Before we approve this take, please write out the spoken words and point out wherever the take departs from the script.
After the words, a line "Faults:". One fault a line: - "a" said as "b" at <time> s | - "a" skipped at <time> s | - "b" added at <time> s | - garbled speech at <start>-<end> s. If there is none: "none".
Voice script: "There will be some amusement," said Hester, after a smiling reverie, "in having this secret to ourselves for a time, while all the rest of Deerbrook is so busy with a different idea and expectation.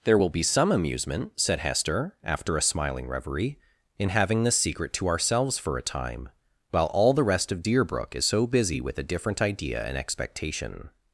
"There will be some amusement," said Hester, after a smiling reverie, "in having this secret to ourselves for a time, while all the rest of Deerbrook is so busy with a different idea and expectation.
Faults:
none